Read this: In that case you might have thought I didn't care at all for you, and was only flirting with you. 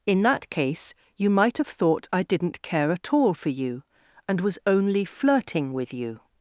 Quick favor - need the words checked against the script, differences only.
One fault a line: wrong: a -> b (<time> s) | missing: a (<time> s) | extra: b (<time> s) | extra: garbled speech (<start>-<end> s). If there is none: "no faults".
no faults